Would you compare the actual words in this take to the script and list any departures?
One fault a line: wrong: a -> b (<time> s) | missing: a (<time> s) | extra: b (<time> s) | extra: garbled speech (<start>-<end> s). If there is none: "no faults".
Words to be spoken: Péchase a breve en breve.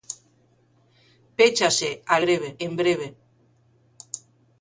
no faults